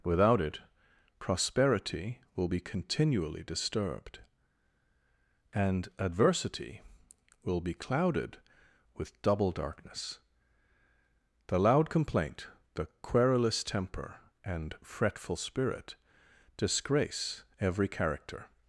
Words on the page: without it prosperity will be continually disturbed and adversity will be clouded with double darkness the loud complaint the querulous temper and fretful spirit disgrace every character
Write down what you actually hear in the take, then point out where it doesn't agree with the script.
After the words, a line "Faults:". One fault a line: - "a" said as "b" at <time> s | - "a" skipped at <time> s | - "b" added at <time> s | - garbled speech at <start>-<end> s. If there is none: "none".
without it prosperity will be continually disturbed and adversity will be clouded with double darkness the loud complaint the querulous temper and fretful spirit disgrace every character
Faults:
none